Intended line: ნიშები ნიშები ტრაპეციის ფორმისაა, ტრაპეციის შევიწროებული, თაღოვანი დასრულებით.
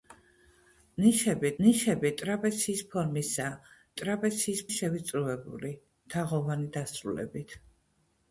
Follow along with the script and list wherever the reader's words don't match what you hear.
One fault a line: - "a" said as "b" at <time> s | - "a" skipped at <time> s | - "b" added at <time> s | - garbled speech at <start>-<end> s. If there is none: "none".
none